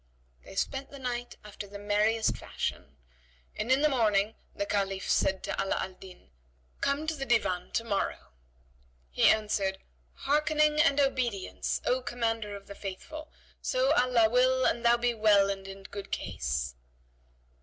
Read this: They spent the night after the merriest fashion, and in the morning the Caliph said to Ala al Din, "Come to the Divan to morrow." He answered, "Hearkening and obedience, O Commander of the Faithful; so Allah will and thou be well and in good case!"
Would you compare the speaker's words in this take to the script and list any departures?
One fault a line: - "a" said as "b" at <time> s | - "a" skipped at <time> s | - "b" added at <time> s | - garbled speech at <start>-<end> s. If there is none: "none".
none